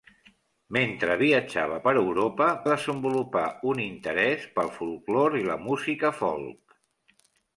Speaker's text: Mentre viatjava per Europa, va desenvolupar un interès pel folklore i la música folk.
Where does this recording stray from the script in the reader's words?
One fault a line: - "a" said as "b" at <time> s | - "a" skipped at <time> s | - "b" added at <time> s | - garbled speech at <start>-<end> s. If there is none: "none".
- "va" skipped at 2.5 s